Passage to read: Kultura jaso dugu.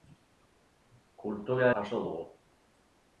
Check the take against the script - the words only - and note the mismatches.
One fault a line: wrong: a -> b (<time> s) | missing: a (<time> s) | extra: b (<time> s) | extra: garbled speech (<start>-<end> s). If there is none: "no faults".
no faults